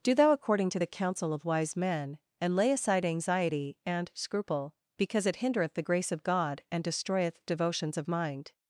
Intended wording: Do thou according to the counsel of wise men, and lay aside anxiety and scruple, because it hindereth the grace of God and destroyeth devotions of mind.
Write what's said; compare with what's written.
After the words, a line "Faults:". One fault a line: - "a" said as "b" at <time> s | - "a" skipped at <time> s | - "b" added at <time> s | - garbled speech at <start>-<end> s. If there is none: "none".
Do thou according to the counsel of wise men, and lay aside anxiety and scruple, because it hindereth the grace of God and destroyeth devotions of mind.
Faults:
none